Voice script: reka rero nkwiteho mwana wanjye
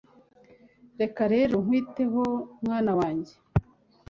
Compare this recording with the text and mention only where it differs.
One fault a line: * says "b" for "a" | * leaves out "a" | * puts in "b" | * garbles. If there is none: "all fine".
all fine